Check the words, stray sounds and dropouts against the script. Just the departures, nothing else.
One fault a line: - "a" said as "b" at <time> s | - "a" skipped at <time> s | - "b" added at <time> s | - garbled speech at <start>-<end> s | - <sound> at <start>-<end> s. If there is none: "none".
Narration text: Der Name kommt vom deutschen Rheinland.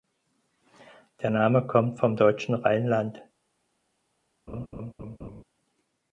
- laugh at 4.5-5.4 s